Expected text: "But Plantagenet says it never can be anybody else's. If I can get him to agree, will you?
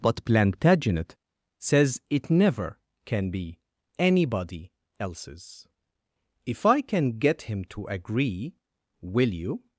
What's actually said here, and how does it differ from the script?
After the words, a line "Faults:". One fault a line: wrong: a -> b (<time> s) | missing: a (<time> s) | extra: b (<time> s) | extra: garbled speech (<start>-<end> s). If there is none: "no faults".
"But Plantagenet says it never can be anybody else's. If I can get him to agree, will you?
Faults:
no faults